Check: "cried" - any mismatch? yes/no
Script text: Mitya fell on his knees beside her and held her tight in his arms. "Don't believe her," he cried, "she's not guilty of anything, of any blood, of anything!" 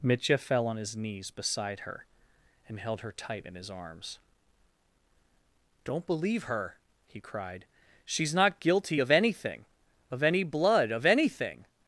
no